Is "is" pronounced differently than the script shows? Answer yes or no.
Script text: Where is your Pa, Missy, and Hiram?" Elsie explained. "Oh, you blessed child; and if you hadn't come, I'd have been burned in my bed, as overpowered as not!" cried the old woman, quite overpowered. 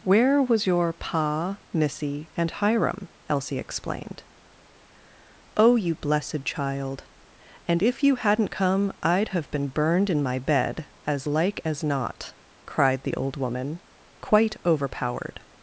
yes